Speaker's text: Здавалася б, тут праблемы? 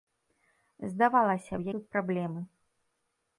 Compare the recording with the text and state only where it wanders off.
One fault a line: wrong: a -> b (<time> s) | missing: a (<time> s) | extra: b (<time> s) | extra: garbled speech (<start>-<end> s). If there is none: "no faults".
no faults